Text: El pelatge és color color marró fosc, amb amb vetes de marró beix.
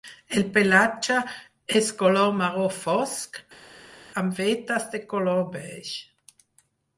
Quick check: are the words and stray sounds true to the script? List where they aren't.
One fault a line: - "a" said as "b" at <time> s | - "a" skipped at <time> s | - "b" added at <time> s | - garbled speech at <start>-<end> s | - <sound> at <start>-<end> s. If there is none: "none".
- "color" skipped at 2.3 s
- "amb" skipped at 4.4 s
- "marró" said as "color" at 5.2 s